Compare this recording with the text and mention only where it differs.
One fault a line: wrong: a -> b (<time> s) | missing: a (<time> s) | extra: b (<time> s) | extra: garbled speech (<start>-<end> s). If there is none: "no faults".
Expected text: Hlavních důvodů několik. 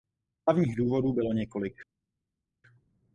extra: bylo (1.1 s)